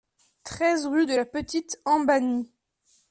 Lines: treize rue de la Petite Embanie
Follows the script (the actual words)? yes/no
yes